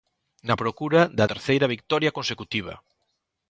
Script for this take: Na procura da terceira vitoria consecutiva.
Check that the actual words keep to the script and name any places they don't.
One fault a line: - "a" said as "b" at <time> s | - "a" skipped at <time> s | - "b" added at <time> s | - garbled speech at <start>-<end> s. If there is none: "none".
none